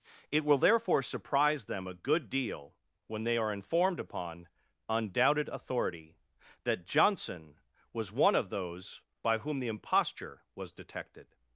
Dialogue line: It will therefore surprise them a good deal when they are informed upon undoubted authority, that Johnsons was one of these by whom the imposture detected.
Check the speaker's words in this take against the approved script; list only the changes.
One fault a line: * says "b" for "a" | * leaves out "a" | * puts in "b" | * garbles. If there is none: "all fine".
* says "Johnson" for "Johnsons"
* says "those" for "these"
* puts in "was"